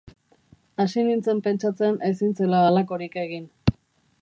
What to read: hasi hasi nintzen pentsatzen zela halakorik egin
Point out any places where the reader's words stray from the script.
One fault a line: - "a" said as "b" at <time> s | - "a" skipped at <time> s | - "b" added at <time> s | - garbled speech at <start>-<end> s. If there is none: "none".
- "hasi" skipped at 1.0 s
- "ezin" added at 2.1 s